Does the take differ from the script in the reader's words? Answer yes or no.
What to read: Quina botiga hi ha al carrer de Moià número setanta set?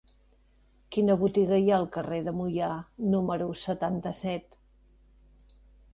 no